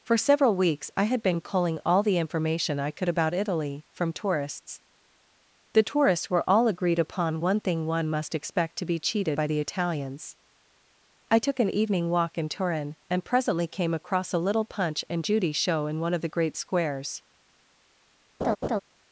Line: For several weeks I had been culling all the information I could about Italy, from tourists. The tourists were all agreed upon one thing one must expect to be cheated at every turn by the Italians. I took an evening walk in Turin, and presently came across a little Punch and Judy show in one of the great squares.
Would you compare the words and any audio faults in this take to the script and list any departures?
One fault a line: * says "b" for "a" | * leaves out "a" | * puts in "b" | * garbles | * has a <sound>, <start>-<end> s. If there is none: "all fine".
* leaves out "at every turn"
* has a laugh, 18.4-18.8 s